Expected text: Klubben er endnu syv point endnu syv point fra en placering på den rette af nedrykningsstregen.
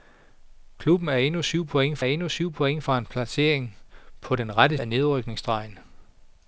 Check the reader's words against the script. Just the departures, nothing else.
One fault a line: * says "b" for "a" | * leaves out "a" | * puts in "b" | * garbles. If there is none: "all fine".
all fine